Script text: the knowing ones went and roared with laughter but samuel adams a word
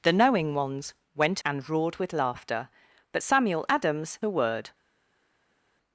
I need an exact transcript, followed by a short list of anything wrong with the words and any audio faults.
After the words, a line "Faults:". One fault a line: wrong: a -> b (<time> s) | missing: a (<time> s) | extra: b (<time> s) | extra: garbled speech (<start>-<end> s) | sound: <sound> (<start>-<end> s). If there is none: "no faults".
the knowing ones went and roared with laughter but samuel adams a word
Faults:
no faults